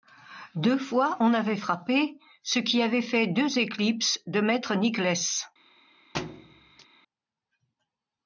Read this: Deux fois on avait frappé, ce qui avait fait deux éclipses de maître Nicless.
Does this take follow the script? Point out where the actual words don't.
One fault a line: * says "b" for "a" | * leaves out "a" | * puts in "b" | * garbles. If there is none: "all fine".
all fine